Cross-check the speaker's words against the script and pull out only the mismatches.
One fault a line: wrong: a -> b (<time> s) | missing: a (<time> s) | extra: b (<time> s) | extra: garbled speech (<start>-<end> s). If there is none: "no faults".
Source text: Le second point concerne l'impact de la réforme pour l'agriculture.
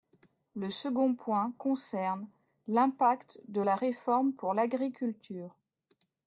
no faults